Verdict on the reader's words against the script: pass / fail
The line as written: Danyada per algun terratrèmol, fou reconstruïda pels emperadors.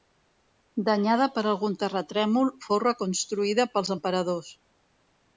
pass